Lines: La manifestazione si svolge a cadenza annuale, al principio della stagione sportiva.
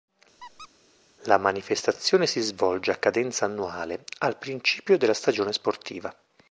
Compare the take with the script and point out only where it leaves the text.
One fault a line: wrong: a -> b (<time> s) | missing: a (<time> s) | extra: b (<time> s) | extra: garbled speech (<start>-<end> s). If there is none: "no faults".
no faults